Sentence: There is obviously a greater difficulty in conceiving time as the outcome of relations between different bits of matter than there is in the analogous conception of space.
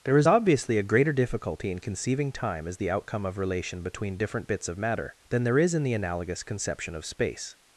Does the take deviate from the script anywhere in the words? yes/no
yes